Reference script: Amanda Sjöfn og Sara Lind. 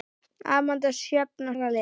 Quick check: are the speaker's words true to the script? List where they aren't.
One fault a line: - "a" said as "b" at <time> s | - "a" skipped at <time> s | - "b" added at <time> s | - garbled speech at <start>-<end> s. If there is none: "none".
- "Sara" skipped at 1.6 s